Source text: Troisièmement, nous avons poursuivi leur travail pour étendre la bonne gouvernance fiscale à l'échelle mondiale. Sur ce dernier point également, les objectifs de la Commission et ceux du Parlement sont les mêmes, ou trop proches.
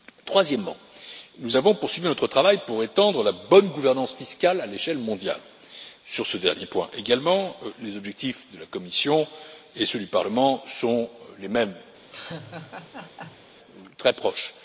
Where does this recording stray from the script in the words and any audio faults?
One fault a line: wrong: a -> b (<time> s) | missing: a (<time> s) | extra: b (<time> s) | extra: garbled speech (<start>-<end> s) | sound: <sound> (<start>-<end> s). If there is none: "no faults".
wrong: leur -> notre (2.1 s)
sound: laugh (12.1-13.5 s)
wrong: trop -> très (14.0 s)